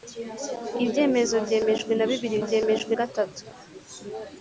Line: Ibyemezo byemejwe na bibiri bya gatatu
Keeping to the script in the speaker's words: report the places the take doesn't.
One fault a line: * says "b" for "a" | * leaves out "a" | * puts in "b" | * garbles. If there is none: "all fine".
* says "byemejwe" for "bya"